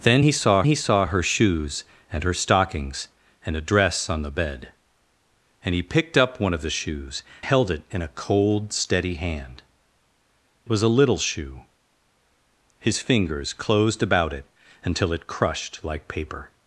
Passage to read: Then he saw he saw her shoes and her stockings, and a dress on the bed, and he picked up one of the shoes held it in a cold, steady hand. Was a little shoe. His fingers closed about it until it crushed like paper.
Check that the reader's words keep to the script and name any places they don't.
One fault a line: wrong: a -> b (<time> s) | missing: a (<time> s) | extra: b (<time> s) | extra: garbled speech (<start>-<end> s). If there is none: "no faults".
no faults